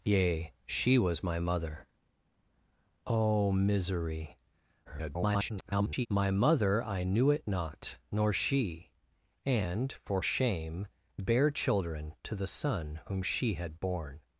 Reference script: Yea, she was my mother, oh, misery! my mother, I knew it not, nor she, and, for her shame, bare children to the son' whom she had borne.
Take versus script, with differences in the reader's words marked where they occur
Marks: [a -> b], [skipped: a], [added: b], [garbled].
Yea, she was my mother, oh, misery! [garbled] my mother, I knew it not, nor she, and, for [skipped: her] shame, bare children to the son' whom she had borne.